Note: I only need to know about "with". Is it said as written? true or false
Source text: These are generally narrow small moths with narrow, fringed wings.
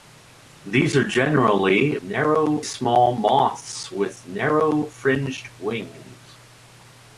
true